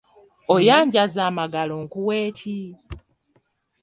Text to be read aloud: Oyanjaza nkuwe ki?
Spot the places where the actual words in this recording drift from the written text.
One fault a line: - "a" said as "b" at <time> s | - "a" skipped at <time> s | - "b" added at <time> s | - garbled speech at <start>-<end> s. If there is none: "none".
- "amagalo" added at 1.3 s